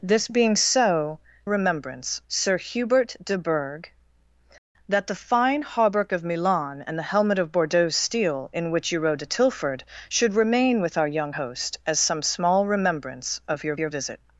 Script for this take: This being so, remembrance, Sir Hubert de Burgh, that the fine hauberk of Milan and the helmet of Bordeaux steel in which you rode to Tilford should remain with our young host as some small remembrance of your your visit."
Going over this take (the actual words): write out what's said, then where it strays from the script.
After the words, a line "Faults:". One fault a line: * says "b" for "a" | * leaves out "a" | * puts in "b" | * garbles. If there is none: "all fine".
This being so, remembrance, Sir Hubert de Burgh, that the fine hauberk of Milan and the helmet of Bordeaux steel in which you rode to Tilford should remain with our young host as some small remembrance of your your visit."
Faults:
all fine